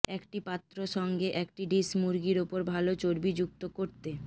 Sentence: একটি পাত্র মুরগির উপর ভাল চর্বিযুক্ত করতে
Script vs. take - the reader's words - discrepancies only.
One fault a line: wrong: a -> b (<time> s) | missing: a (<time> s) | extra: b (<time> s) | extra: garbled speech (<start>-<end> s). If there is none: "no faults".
extra: সঙ্গে একটি ডিশ (1.0 s)